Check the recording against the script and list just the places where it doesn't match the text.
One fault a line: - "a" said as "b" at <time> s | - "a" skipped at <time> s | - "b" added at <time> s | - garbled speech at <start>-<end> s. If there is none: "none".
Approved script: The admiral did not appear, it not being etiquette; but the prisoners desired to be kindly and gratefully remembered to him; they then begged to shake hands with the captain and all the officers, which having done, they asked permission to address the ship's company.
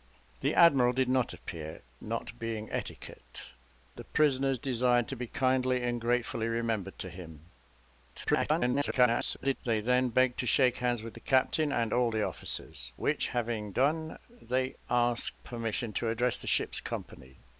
- "it" skipped at 1.8 s
- "but" skipped at 3.5 s
- garbled speech at 8.1-9.6 s